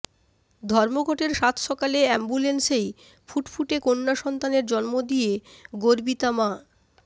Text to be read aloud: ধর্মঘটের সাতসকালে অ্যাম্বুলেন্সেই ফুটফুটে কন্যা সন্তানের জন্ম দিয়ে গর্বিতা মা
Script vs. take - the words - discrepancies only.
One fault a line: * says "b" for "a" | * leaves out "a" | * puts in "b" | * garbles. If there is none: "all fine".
all fine